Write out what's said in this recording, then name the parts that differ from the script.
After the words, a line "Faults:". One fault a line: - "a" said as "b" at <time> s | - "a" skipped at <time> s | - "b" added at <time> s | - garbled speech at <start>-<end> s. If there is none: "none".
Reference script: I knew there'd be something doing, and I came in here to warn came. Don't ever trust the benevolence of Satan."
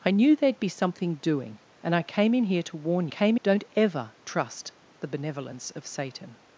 I knew there'd be something doing, and I came in here to warn came. Don't ever trust the benevolence of Satan."
Faults:
none